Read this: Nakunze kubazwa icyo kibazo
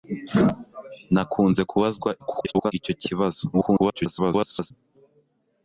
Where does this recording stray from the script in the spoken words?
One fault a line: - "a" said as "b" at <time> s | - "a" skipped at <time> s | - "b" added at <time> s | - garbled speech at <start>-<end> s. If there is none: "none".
- garbled speech at 2.2-2.7 s
- garbled speech at 3.5-4.7 s